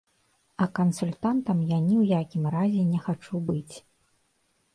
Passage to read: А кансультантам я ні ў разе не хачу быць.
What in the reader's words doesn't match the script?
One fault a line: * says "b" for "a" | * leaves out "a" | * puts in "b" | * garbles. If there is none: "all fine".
* puts in "якім"